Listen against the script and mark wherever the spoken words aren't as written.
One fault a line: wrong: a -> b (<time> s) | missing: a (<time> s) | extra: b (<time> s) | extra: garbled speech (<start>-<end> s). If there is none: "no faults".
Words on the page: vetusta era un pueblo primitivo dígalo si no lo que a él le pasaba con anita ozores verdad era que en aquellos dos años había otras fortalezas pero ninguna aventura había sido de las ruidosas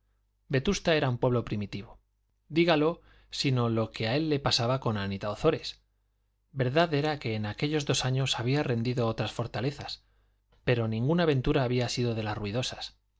extra: rendido (8.6 s)